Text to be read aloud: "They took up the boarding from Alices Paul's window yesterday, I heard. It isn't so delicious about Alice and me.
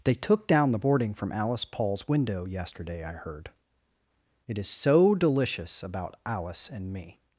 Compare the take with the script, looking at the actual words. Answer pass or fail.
fail